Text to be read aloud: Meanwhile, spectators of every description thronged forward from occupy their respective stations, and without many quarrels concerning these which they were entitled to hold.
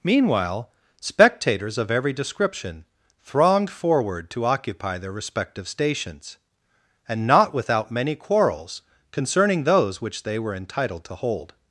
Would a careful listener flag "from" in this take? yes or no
yes